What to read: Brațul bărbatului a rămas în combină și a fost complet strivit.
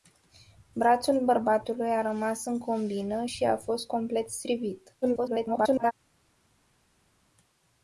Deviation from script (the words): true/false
true